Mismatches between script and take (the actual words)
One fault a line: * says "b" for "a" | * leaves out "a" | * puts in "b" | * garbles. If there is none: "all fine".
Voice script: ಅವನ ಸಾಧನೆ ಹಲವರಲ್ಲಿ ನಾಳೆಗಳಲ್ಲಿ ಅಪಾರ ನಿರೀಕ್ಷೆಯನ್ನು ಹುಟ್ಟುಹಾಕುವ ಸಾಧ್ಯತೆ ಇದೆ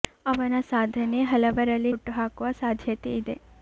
* leaves out "ನಾಳೆಗಳಲ್ಲಿ ಅಪಾರ ನಿರೀಕ್ಷೆಯನ್ನು"